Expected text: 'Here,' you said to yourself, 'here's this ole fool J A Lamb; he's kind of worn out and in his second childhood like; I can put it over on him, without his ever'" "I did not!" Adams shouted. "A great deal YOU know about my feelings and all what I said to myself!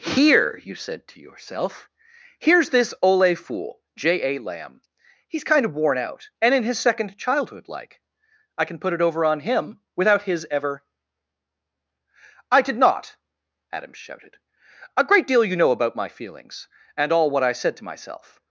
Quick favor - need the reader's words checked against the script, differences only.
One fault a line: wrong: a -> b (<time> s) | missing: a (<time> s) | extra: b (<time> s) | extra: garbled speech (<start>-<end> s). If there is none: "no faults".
no faults